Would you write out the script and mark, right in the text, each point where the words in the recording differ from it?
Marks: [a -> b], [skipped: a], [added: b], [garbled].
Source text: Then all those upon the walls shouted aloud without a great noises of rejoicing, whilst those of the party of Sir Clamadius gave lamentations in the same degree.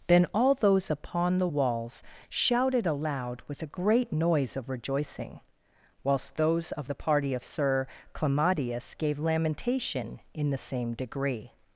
Then all those upon the walls shouted aloud [without -> with] a great [noises -> noise] of rejoicing, whilst those of the party of Sir Clamadius gave [lamentations -> lamentation] in the same degree.